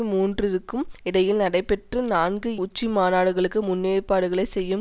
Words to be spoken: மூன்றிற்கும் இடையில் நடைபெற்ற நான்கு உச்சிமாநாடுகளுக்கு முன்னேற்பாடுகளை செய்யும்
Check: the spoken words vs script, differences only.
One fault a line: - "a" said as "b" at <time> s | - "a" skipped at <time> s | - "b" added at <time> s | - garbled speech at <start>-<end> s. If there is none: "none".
none